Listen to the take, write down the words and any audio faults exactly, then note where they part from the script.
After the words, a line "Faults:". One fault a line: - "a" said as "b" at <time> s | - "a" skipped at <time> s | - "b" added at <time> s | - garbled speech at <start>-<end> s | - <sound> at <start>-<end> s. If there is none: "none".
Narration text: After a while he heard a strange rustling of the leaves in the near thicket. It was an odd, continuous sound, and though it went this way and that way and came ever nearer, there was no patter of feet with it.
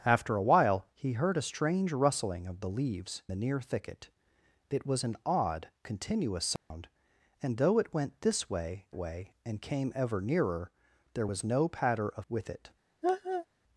After a while he heard a strange rustling of the leaves the near thicket. It was an odd, continuous sound, and though it went this way way and came ever nearer, there was no patter of with it.
Faults:
- "in" skipped at 3.2 s
- dropout at 6.6-6.7 s
- "and that" skipped at 8.9 s
- "feet" skipped at 12.3 s
- laugh at 13.0-13.5 s